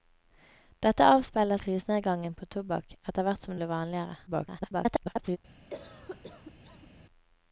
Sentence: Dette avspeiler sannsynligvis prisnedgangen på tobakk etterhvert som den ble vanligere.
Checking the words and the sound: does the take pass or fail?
fail